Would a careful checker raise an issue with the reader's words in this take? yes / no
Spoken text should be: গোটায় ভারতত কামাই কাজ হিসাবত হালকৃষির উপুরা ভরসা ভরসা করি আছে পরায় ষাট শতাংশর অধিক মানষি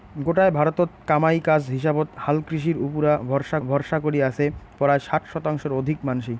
no